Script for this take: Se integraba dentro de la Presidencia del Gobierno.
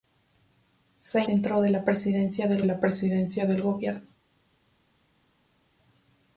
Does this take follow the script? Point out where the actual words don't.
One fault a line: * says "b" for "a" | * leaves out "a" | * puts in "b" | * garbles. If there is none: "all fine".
* leaves out "integraba"
* puts in "la Presidencia del"